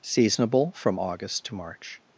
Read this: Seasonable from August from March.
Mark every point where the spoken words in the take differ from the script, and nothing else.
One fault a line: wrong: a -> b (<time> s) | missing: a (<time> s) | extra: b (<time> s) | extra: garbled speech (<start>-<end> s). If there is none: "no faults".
wrong: from -> to (1.4 s)